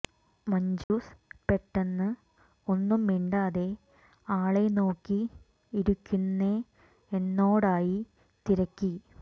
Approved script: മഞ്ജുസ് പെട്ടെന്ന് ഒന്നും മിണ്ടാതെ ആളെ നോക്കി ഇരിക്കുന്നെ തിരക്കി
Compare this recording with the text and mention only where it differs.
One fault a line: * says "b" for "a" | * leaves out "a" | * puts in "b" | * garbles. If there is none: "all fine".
* puts in "എന്നോടായി"